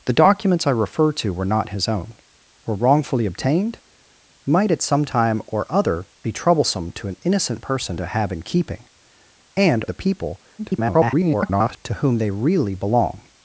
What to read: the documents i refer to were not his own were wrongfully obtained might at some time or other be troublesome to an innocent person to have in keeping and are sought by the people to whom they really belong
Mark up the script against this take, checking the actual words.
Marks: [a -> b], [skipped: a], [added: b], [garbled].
the documents i refer to were not his own were wrongfully obtained might at some time or other be troublesome to an innocent person to have in keeping and [skipped: are sought by] the people [garbled] to whom they really belong